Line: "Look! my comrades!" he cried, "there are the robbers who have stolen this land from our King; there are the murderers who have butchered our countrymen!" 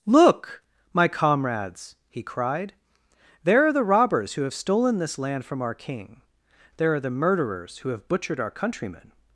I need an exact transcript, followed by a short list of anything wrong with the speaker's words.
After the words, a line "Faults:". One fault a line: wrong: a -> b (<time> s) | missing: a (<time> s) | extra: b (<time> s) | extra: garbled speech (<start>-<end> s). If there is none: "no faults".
"Look! my comrades!" he cried, "there are the robbers who have stolen this land from our King; there are the murderers who have butchered our countrymen!"
Faults:
no faults